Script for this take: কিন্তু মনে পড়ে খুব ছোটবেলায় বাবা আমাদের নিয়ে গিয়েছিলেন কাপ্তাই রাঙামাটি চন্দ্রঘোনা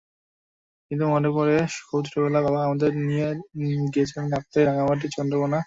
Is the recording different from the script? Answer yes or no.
no